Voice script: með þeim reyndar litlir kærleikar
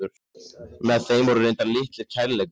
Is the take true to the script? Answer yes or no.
no